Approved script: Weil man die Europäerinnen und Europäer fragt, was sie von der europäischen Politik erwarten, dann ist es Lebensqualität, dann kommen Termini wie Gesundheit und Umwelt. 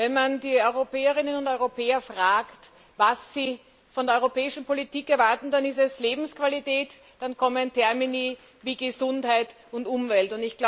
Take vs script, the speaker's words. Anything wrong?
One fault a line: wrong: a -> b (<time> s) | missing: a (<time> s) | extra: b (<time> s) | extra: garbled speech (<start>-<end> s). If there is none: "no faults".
wrong: Weil -> Wenn (0.0 s)